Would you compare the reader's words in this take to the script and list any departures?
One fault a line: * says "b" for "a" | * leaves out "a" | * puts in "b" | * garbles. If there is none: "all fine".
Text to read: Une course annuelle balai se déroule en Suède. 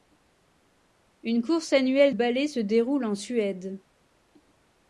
all fine